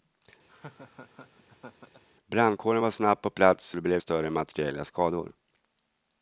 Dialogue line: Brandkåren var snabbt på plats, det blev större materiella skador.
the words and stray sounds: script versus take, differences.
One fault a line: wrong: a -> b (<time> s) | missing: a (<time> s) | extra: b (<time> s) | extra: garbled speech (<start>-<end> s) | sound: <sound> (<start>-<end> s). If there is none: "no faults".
sound: laugh (0.5-2.0 s)